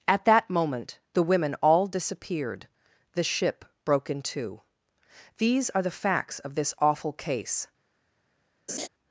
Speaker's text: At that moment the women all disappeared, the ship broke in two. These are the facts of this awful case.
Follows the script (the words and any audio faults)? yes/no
no